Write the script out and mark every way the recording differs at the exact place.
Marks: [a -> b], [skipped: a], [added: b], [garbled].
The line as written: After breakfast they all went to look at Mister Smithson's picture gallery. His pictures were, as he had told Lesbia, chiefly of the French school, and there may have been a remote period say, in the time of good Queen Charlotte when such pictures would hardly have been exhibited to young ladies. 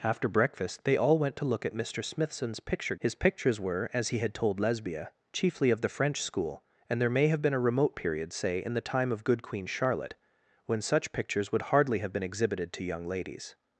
After breakfast they all went to look at Mister Smithson's picture [skipped: gallery.] His pictures were, as he had told Lesbia, chiefly of the French school, and there may have been a remote period say, in the time of good Queen Charlotte when such pictures would hardly have been exhibited to young ladies.